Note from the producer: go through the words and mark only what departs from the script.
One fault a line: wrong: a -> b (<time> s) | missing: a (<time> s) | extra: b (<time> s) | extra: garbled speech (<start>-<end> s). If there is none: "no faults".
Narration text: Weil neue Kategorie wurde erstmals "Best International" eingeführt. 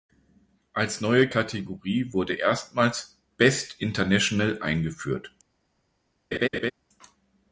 wrong: Weil -> Als (0.7 s)